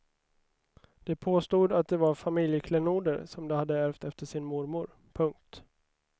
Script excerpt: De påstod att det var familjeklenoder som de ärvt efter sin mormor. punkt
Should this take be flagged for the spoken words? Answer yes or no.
yes